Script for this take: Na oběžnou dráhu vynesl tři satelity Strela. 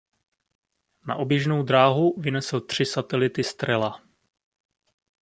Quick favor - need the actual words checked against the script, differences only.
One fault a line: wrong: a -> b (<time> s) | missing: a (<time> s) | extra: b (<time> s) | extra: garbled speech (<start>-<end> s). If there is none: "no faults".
no faults